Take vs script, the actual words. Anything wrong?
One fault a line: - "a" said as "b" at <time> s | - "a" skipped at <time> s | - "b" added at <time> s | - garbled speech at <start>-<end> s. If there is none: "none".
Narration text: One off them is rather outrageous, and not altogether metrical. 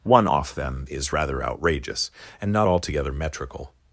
none